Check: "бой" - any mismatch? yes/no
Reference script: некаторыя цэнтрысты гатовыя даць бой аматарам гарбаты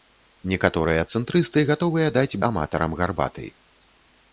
yes